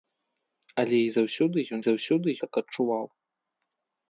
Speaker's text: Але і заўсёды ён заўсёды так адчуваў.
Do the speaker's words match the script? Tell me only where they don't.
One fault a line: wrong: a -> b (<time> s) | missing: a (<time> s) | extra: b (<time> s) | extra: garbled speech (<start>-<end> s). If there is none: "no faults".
no faults